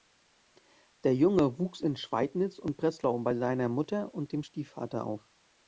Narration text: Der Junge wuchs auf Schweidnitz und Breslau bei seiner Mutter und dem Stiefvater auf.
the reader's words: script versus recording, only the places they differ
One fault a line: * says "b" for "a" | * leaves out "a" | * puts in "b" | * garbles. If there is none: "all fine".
* says "in" for "auf"